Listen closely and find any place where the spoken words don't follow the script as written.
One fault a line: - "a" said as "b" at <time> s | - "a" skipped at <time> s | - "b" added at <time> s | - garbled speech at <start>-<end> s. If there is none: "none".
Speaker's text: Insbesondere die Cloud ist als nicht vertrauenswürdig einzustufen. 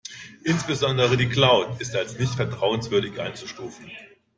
none